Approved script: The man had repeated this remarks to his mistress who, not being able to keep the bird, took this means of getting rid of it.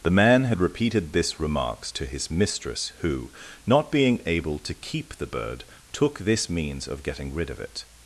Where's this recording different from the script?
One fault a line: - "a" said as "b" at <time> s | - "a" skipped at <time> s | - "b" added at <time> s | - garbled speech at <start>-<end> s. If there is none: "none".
none